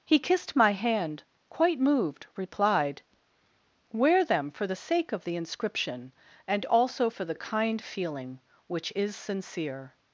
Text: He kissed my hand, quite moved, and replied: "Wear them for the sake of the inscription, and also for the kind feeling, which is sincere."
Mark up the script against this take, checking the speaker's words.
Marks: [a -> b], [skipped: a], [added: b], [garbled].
He kissed my hand, quite moved, [skipped: and] replied: "Wear them for the sake of the inscription, and also for the kind feeling, which is sincere."